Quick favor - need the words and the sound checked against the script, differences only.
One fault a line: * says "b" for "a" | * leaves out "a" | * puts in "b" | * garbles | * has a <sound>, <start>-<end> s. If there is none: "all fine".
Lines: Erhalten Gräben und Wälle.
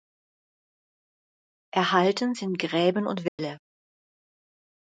* puts in "sind"
* has a dropout, 3.3-3.4 s